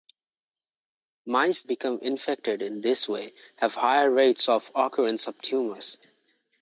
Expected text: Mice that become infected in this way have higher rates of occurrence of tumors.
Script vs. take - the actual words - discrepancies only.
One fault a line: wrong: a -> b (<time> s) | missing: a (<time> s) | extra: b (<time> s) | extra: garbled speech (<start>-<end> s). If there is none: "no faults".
missing: that (1.6 s)